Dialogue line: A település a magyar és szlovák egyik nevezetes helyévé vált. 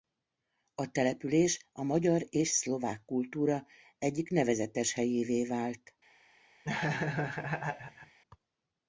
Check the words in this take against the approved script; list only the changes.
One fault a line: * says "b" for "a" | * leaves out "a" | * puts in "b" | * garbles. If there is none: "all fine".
* puts in "kultúra"